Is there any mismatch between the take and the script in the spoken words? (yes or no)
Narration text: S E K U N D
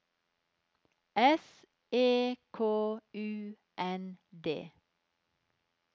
no